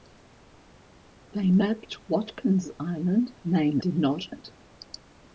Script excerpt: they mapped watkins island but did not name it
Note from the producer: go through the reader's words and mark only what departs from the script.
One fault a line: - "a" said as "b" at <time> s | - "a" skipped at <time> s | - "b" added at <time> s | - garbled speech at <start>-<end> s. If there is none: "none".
- "but" said as "name" at 3.4 s
- "name" skipped at 4.2 s